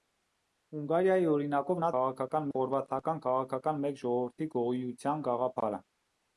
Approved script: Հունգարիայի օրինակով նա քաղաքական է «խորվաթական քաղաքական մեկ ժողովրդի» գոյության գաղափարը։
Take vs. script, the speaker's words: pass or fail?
pass